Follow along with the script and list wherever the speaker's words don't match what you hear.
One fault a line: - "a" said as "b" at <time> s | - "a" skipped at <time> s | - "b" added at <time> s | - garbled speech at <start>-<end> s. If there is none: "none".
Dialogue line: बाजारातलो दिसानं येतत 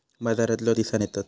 none